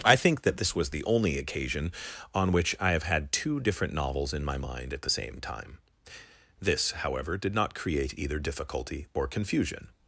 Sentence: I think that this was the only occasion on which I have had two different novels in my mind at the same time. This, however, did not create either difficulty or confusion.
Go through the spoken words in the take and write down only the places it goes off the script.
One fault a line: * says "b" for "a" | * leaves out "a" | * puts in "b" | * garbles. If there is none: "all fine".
all fine